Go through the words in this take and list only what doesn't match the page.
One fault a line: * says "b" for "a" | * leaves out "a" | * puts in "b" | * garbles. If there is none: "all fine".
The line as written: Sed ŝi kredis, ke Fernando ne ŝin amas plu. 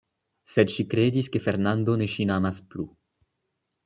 all fine